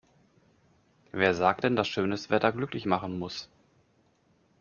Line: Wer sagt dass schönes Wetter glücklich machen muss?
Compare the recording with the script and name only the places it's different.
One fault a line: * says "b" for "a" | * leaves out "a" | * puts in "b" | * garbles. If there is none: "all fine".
* puts in "denn"